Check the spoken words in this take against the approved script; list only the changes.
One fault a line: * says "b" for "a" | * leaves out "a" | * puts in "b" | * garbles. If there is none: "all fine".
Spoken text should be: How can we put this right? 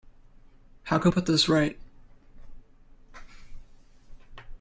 * leaves out "we"